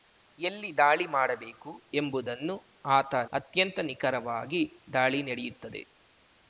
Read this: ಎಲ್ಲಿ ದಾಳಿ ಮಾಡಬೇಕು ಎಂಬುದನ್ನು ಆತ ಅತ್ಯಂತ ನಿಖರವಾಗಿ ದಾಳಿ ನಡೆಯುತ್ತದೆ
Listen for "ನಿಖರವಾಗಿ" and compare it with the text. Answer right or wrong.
right